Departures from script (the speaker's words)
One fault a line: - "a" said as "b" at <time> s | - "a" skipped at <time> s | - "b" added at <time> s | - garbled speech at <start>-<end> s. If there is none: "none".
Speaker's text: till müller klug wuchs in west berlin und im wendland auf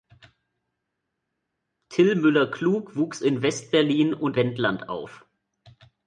- "im" skipped at 4.4 s